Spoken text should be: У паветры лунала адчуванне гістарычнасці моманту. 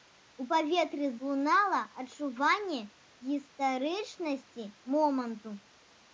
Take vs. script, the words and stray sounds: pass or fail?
pass